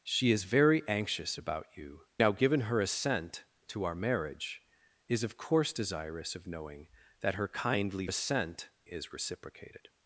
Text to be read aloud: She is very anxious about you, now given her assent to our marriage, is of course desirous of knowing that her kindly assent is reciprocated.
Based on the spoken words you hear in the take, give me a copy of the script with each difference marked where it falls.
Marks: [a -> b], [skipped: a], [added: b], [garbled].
She is very anxious about you, now given her assent to our marriage, is of course desirous of knowing that her kindly assent is reciprocated.